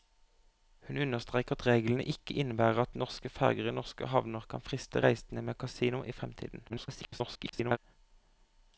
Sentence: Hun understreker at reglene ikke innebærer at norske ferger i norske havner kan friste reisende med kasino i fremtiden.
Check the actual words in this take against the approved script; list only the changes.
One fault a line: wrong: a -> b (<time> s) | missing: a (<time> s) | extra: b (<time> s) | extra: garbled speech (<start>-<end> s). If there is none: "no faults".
extra: garbled speech (6.7-7.8 s)